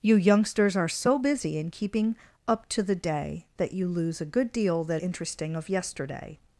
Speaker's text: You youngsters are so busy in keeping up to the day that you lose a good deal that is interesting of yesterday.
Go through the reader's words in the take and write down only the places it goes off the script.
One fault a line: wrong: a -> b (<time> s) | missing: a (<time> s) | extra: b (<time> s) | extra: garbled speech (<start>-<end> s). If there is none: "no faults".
missing: is (5.0 s)